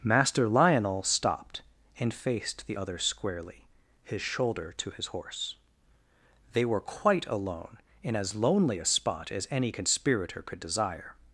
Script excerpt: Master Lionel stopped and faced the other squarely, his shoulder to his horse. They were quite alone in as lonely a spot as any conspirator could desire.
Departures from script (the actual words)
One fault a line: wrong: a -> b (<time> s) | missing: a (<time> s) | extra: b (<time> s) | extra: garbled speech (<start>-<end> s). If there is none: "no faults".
no faults